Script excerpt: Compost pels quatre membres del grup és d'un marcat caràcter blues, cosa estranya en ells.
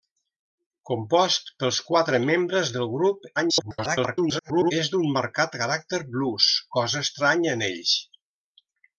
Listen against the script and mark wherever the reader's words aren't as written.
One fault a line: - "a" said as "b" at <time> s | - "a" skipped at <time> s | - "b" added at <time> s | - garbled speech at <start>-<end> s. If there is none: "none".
- garbled speech at 3.4-4.7 s